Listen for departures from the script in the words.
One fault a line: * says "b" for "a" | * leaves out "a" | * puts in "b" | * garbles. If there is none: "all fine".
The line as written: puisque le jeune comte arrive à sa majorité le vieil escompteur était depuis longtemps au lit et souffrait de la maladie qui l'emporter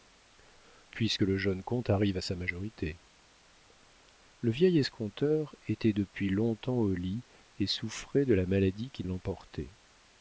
all fine